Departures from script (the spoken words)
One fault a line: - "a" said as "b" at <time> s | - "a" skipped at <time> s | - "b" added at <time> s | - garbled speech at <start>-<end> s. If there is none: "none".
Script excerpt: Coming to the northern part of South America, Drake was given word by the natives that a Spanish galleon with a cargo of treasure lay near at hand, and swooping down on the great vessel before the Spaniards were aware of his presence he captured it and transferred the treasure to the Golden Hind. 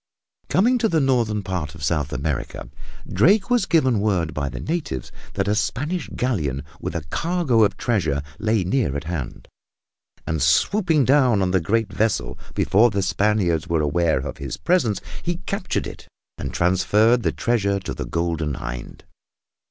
none